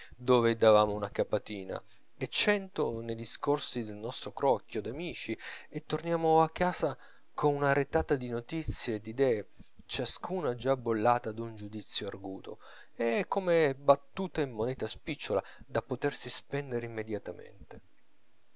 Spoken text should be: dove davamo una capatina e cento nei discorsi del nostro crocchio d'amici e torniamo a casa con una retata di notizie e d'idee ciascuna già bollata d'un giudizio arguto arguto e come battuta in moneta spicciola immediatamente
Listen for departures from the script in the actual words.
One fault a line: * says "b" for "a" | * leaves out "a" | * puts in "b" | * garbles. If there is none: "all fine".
* leaves out "arguto"
* puts in "da potersi spendere"